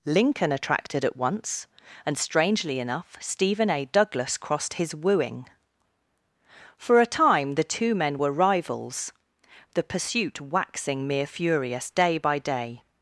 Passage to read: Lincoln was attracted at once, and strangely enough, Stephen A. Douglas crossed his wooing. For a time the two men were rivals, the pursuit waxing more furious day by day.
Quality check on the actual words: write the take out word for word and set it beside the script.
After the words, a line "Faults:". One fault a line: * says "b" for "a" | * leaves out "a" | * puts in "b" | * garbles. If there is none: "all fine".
Lincoln attracted at once, and strangely enough, Stephen A. Douglas crossed his wooing. For a time the two men were rivals, the pursuit waxing mere furious day by day.
Faults:
* leaves out "was"
* says "mere" for "more"